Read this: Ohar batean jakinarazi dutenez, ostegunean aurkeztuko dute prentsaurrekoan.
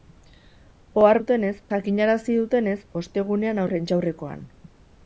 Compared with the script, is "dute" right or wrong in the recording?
wrong